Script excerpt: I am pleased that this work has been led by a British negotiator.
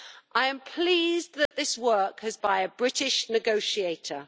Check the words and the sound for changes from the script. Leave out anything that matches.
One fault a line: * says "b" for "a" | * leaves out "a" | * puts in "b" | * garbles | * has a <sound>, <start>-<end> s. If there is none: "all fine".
* has a dropout, 1.5-1.5 s
* leaves out "been led"